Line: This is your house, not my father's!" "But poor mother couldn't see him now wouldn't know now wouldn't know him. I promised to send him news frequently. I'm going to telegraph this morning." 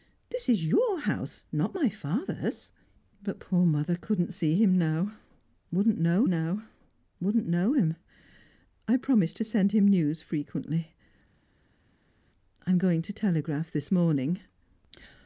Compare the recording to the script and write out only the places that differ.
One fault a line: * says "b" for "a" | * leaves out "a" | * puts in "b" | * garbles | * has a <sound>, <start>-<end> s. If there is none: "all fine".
all fine